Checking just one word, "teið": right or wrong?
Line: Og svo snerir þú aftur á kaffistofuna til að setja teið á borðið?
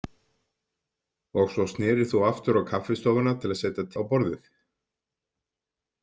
wrong